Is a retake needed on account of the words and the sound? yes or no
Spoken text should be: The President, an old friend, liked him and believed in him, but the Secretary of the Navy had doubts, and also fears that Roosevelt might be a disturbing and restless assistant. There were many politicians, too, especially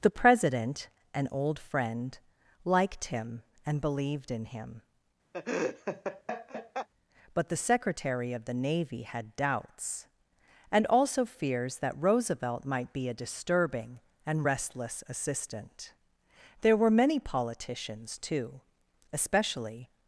yes